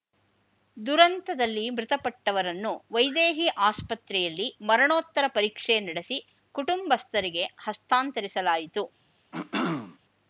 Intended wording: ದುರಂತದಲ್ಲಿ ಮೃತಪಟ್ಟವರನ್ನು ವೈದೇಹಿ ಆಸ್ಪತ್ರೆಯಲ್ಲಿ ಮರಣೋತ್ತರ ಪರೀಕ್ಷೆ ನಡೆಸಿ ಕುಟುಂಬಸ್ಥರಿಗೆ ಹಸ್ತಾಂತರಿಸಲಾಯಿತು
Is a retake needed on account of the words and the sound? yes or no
yes